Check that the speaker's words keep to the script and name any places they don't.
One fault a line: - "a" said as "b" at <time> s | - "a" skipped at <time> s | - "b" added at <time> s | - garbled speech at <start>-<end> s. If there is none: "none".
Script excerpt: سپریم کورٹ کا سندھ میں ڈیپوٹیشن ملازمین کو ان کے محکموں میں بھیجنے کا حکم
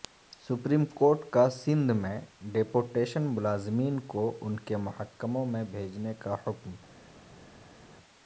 none